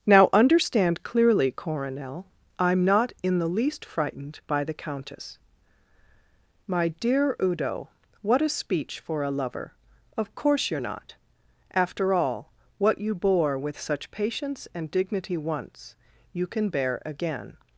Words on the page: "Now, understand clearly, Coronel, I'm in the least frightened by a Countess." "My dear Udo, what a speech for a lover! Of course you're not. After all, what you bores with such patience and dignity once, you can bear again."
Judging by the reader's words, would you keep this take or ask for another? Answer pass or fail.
fail